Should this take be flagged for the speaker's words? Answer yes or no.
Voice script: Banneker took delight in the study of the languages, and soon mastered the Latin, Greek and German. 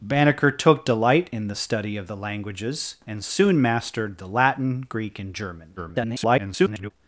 yes